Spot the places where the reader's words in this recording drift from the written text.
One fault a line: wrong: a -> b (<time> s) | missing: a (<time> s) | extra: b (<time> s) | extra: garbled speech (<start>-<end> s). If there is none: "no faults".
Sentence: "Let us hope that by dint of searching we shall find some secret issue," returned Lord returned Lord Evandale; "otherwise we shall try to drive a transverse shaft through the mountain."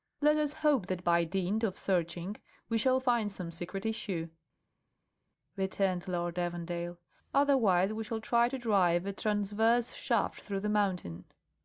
missing: returned Lord (6.3 s)